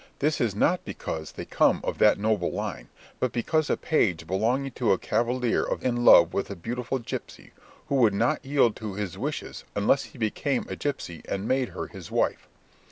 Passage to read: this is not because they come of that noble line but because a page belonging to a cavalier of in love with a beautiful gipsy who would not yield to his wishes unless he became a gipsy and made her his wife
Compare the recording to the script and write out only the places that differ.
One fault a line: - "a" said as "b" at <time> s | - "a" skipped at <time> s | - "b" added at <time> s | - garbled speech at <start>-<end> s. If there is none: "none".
none